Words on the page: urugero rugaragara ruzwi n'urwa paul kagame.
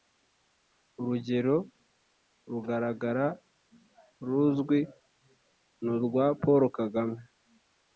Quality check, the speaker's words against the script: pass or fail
pass